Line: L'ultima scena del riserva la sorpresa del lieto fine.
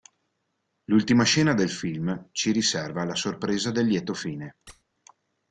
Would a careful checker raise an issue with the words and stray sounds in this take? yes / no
yes